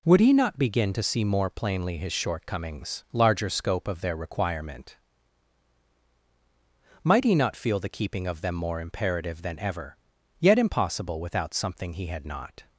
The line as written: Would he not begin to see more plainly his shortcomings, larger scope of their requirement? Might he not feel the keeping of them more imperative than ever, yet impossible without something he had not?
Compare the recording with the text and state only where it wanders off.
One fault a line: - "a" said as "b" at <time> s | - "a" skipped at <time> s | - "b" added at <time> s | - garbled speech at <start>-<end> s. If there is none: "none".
none